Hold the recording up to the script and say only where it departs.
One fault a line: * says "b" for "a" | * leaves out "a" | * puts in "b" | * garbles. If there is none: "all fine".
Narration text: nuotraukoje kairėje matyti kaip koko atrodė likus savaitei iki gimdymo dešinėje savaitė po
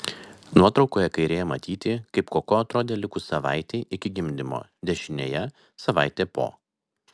all fine